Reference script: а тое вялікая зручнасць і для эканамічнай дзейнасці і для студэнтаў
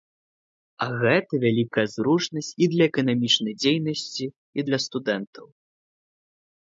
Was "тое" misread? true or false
true